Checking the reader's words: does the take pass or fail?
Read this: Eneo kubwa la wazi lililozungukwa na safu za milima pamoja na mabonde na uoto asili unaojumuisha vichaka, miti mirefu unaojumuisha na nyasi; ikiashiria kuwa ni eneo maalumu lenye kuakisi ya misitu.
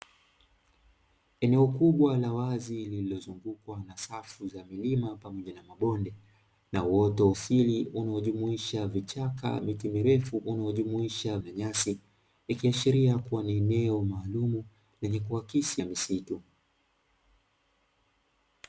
pass